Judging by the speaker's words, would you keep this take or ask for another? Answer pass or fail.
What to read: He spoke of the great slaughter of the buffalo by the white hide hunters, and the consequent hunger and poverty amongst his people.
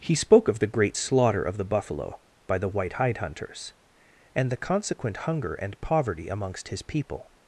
pass